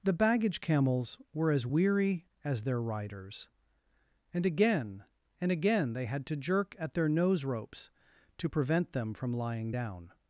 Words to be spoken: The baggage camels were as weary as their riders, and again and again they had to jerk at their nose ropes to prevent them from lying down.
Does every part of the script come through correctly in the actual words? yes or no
yes